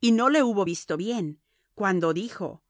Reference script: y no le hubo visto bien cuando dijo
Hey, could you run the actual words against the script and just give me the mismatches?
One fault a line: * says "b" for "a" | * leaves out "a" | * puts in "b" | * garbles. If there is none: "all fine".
all fine